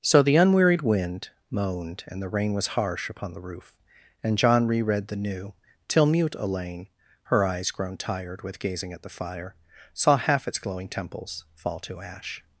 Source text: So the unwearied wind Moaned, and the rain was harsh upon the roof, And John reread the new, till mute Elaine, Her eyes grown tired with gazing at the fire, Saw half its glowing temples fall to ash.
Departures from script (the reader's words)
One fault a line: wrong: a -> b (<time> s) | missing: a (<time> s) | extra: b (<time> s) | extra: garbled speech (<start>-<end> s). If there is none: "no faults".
no faults